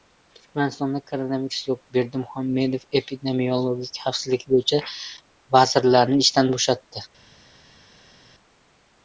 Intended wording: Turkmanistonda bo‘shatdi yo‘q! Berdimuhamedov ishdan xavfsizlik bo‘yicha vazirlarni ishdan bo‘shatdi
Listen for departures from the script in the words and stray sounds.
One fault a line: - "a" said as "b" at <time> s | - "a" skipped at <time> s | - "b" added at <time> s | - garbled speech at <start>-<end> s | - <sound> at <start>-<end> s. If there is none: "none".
- "bo‘shatdi" said as "koronavirus" at 1.1 s
- "ishdan" said as "epidemiologik" at 3.0 s